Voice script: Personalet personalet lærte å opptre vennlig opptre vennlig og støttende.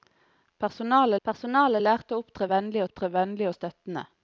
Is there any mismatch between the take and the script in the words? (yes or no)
no